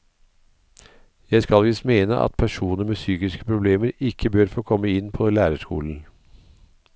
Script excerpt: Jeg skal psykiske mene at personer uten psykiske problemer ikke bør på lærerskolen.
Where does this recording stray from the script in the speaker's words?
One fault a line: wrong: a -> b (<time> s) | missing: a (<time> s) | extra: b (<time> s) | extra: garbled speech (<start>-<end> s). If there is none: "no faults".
wrong: psykiske -> visst (1.6 s)
wrong: uten -> med (2.8 s)
extra: få komme inn (4.5 s)